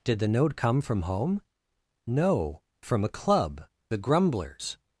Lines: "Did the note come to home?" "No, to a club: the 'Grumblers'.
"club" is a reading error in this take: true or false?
false